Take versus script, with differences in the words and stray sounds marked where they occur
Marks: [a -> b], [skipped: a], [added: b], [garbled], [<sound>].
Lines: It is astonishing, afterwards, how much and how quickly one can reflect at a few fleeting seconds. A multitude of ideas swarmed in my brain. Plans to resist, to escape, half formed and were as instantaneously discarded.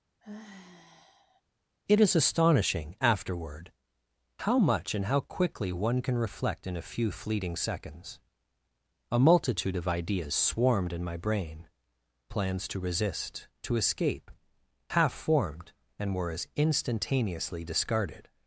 [sigh] It is astonishing, [afterwards, -> afterward] how much and how quickly one can reflect [at -> in] a few fleeting seconds. A multitude of ideas swarmed in my brain. Plans to resist, to escape, half formed and were as instantaneously discarded.